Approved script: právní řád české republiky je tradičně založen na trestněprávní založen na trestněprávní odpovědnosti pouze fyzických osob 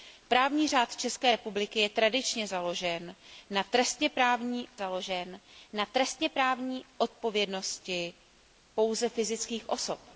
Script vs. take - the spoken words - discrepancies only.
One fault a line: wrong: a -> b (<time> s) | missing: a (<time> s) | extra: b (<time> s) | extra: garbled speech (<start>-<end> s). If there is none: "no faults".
no faults